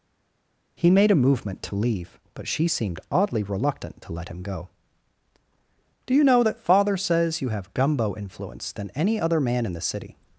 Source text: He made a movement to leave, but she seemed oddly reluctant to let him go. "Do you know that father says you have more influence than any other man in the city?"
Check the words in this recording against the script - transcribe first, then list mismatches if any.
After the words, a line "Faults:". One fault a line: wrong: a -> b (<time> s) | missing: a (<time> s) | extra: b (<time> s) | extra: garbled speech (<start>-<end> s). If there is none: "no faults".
He made a movement to leave, but she seemed oddly reluctant to let him go. "Do you know that father says you have gumbo influence than any other man in the city?"
Faults:
wrong: more -> gumbo (7.7 s)